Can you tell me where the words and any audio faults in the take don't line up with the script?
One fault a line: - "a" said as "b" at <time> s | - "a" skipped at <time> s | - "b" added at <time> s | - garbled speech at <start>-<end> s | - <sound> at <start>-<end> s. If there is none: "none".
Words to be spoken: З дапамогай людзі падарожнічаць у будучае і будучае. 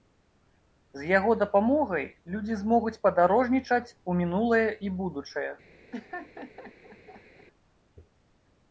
- "яго" added at 1.2 s
- "змогуць" added at 2.6 s
- "будучае" said as "мінулае" at 4.2 s
- laugh at 5.9-7.5 s